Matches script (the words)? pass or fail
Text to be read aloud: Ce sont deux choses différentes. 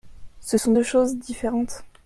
pass